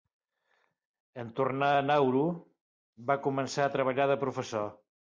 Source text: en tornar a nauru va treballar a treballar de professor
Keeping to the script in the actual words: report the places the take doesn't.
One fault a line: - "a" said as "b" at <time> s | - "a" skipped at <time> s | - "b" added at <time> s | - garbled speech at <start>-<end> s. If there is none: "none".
- "treballar" said as "començar" at 3.3 s